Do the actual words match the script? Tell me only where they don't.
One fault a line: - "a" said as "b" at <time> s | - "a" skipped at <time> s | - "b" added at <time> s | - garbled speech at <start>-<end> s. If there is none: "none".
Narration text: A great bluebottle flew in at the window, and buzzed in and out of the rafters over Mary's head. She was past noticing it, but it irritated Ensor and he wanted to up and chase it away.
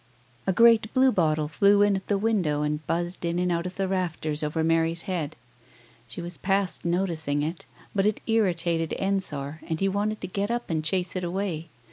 - "get" added at 10.3 s